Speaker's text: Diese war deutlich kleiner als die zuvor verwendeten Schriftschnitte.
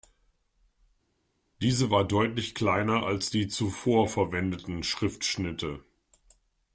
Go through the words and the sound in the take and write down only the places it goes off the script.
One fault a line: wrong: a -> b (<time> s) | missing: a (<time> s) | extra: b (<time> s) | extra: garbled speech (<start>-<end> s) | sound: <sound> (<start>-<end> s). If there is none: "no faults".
no faults